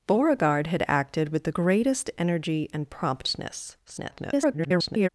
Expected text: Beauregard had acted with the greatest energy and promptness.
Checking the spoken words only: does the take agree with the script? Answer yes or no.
no